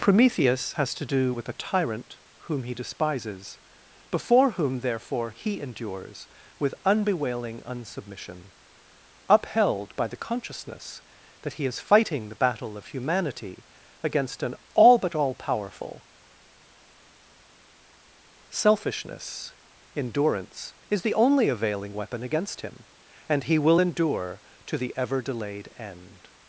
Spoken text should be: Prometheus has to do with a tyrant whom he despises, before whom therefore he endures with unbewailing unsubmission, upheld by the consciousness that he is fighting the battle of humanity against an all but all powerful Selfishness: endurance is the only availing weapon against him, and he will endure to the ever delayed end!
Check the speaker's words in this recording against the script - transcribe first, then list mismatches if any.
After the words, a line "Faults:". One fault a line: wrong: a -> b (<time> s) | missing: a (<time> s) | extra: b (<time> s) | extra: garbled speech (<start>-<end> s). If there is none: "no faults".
Prometheus has to do with a tyrant whom he despises, before whom therefore he endures with unbewailing unsubmission, upheld by the consciousness that he is fighting the battle of humanity against an all but all powerful Selfishness: endurance is the only availing weapon against him, and he will endure to the ever delayed end!
Faults:
no faults